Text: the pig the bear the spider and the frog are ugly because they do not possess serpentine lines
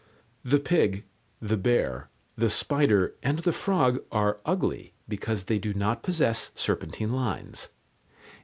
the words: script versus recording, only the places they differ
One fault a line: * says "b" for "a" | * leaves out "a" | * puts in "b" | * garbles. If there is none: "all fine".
all fine